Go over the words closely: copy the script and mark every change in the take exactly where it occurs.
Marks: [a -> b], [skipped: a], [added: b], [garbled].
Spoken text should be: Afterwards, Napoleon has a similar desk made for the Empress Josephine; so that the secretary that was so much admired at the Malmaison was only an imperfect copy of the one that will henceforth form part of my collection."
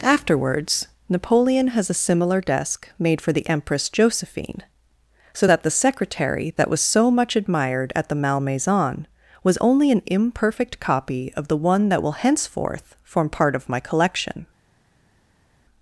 Afterwards, Napoleon has a similar desk made for the Empress Josephine; so that the secretary that was so much admired at the Malmaison was only an imperfect copy of the one that will henceforth form part of my collection."